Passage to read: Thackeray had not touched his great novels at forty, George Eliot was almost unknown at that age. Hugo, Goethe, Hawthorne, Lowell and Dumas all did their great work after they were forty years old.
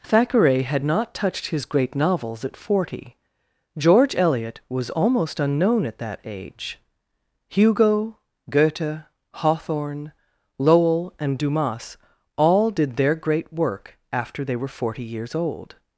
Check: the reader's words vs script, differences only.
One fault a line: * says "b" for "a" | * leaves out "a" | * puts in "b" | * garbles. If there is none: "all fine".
all fine